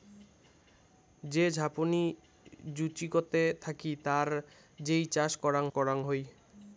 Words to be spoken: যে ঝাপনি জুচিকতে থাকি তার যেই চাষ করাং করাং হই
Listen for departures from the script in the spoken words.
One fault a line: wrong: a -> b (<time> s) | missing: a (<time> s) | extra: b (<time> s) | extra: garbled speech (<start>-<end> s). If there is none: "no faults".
no faults